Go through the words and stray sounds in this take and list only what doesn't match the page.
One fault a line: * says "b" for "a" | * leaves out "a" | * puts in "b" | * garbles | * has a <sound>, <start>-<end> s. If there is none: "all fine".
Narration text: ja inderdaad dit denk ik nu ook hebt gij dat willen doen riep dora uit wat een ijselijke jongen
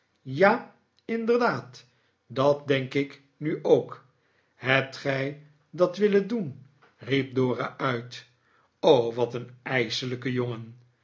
* says "dat" for "dit"